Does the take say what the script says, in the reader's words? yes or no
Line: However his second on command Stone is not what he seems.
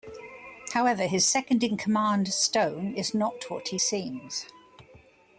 no